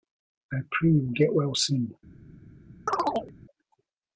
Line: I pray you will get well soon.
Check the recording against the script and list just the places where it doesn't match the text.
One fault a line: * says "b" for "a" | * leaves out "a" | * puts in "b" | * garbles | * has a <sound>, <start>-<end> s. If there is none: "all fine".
* has a chirp, 2.9-3.3 s